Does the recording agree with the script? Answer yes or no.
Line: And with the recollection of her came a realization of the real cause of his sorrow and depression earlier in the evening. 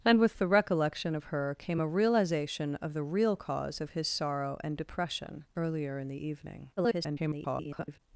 no